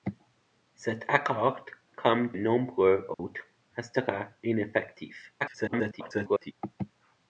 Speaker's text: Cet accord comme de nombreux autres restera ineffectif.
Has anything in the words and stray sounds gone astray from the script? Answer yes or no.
yes